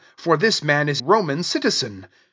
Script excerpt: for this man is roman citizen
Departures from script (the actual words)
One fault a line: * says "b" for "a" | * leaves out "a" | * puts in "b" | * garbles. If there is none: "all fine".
all fine